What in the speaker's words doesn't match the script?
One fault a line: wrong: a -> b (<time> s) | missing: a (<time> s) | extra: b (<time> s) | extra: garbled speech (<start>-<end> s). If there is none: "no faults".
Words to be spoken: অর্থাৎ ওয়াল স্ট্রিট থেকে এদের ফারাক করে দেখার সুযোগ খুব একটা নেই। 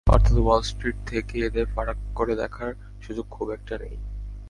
no faults